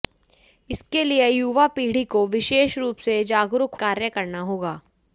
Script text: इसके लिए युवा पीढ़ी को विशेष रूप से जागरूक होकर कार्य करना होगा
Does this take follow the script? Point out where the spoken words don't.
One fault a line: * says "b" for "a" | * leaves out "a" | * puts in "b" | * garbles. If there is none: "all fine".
* leaves out "होकर"